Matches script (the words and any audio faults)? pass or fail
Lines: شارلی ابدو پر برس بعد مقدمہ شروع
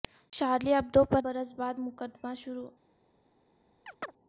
fail